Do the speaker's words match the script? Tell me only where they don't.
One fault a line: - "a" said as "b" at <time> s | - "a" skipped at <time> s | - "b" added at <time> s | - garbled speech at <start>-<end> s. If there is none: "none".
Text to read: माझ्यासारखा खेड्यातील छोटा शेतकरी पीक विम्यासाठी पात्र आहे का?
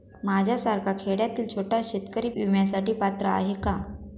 - "पीक" skipped at 2.3 s